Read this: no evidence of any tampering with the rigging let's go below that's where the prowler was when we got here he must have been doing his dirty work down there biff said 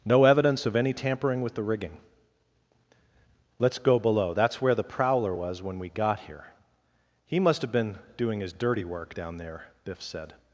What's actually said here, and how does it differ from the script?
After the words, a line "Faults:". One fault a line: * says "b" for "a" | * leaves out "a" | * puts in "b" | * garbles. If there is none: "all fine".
no evidence of any tampering with the rigging let's go below that's where the prowler was when we got here he must have been doing his dirty work down there biff said
Faults:
all fine